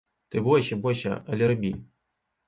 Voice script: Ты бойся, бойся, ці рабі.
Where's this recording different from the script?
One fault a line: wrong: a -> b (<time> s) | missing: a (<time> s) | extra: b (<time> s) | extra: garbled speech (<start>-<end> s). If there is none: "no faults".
wrong: ці -> але (1.2 s)